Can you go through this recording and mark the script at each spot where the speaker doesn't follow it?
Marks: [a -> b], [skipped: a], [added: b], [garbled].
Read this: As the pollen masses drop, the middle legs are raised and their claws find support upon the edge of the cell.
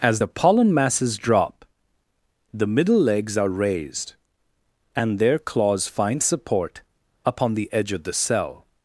As the pollen masses drop, the middle legs are raised and their claws find support upon the edge of the cell.